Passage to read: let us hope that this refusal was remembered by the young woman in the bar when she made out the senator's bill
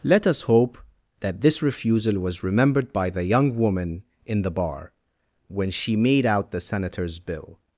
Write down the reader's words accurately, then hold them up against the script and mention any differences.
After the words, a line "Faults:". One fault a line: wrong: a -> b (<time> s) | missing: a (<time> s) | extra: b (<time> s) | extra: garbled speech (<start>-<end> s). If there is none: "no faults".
let us hope that this refusal was remembered by the young woman in the bar when she made out the senator's bill
Faults:
no faults